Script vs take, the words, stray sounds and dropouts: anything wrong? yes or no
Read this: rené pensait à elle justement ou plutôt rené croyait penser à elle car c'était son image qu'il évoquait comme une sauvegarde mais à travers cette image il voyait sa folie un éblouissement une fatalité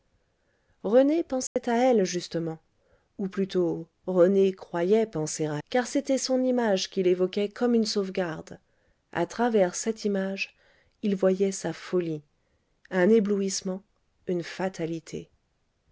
yes